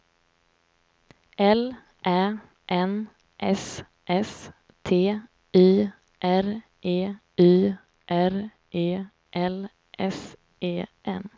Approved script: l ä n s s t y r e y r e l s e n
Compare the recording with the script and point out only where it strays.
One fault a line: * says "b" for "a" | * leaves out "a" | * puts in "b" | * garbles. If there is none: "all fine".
all fine